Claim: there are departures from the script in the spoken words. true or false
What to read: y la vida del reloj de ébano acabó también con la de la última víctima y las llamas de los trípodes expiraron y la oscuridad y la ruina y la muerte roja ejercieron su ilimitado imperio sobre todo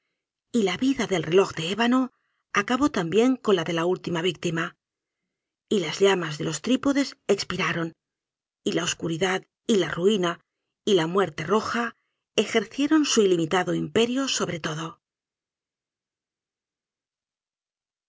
false